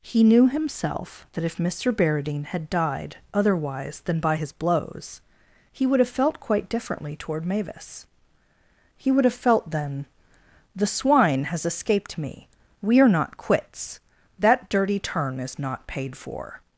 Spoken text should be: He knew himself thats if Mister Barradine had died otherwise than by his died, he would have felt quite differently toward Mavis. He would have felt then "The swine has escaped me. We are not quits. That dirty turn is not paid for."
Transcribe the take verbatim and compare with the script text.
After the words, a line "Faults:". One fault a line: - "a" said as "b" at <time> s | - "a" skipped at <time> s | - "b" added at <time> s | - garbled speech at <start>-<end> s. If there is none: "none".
He knew himself that if Mister Barradine had died otherwise than by his blows, he would have felt quite differently toward Mavis. He would have felt then "The swine has escaped me. We are not quits. That dirty turn is not paid for."
Faults:
- "thats" said as "that" at 1.3 s
- "died" said as "blows" at 4.5 s